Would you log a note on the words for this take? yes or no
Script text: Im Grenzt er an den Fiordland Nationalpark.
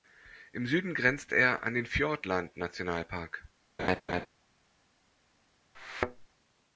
yes